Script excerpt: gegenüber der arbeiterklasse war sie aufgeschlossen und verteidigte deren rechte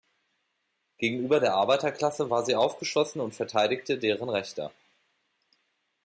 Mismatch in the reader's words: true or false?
false